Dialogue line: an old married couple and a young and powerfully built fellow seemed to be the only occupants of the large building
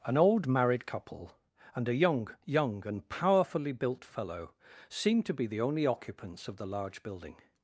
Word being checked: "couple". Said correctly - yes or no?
yes